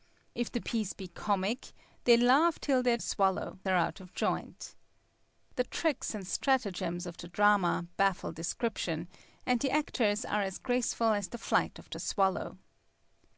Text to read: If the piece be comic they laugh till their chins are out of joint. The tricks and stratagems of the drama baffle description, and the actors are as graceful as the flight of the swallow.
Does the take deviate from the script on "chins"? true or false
true